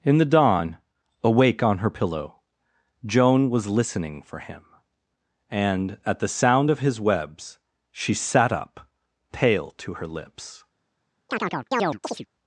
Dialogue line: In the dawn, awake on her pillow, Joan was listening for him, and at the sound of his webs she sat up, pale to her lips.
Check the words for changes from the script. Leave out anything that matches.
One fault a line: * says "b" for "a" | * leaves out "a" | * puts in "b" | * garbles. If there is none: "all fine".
all fine